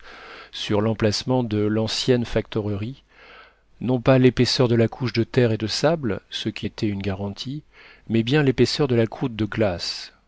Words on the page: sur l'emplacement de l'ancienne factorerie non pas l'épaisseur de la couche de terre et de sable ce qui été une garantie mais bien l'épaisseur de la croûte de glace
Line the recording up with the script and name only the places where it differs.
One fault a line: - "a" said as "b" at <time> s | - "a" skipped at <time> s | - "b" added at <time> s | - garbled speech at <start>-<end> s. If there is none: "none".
none